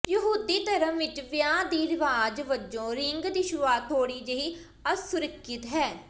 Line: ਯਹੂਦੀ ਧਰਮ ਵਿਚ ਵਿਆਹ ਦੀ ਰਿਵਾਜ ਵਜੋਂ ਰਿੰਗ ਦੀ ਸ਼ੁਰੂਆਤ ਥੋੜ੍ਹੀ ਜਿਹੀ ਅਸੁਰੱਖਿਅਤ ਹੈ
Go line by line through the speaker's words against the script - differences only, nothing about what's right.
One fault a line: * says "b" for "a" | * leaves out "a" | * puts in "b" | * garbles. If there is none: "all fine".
all fine